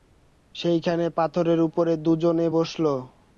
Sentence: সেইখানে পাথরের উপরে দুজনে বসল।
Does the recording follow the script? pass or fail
pass